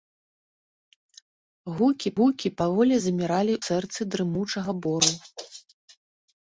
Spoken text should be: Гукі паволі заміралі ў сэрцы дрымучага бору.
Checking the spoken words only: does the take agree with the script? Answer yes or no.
no